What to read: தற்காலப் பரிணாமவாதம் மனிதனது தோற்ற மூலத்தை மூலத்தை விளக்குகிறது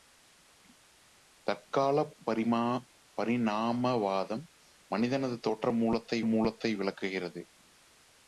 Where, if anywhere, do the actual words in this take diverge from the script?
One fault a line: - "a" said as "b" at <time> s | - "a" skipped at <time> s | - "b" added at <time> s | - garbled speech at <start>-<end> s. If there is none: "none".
none